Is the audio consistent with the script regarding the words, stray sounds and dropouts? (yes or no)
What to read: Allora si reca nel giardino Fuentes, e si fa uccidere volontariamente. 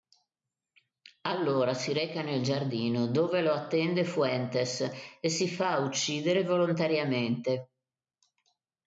no